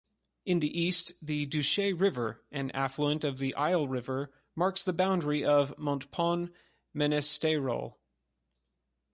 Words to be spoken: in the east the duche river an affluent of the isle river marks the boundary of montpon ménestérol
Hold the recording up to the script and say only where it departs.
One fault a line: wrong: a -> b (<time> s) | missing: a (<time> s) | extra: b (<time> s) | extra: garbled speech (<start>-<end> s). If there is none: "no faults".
no faults